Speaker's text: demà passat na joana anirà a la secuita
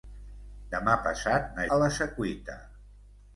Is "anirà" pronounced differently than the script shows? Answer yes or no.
yes